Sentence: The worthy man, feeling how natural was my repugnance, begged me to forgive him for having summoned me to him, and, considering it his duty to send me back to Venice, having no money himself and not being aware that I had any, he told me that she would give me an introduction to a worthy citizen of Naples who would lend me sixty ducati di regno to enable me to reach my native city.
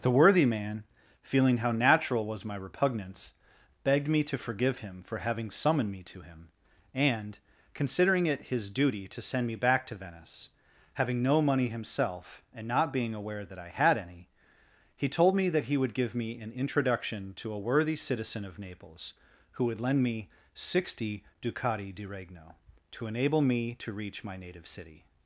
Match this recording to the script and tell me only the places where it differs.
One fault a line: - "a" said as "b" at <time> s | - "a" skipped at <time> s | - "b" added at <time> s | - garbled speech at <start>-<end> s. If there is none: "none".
- "she" said as "he" at 15.7 s